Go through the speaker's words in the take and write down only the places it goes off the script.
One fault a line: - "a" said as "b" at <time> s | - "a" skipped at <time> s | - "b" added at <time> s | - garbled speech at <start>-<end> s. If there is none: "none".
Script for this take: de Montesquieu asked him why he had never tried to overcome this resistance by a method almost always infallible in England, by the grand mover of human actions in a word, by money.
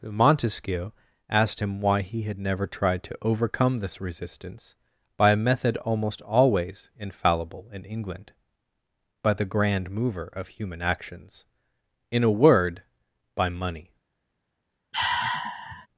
- "de" skipped at 0.0 s